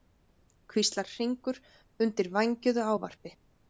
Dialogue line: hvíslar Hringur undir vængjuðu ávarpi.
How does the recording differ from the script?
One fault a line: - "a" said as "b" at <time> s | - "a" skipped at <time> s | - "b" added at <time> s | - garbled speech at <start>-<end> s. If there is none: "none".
none